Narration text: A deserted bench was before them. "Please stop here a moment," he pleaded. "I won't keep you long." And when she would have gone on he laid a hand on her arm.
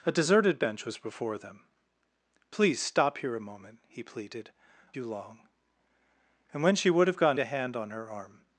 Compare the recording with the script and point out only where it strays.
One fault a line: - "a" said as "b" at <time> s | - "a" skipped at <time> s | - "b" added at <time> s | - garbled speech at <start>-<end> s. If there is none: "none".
- "I won't keep" skipped at 4.5 s
- "on he laid" skipped at 7.4 s